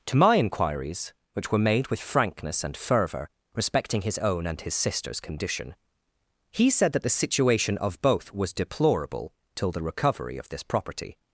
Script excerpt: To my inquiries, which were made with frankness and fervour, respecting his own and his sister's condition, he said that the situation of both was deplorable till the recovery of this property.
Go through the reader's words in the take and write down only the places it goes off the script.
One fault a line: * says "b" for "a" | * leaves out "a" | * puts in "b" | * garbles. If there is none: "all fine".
all fine